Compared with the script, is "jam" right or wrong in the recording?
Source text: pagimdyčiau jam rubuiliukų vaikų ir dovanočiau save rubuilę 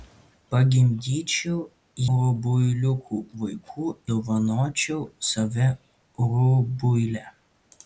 wrong